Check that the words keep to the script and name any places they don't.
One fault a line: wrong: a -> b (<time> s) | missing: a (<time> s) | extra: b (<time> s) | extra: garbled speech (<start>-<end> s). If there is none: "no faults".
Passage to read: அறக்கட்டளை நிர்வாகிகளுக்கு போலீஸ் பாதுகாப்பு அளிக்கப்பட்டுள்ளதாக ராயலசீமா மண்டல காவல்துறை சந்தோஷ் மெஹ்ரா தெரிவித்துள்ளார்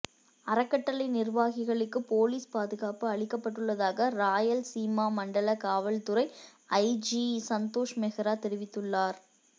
extra: ஐஜி (6.8 s)